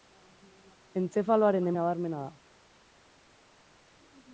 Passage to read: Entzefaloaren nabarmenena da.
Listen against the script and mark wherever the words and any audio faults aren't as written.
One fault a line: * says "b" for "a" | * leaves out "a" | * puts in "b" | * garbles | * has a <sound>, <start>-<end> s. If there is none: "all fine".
all fine